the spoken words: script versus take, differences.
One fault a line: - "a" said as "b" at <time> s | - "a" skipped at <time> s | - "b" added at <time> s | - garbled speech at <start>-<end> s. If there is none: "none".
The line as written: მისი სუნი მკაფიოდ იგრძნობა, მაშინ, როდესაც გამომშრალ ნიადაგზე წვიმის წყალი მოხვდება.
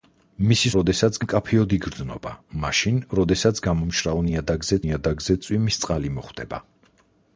- "სუნი" said as "როდესაც" at 0.8 s
- "ნიადაგზე" added at 4.8 s